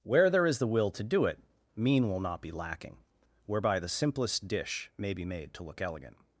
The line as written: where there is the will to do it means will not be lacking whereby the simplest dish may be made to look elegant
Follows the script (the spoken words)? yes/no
no